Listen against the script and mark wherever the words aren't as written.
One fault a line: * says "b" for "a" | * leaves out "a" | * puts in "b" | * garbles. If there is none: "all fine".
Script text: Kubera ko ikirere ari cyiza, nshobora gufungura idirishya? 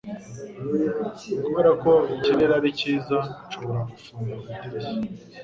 all fine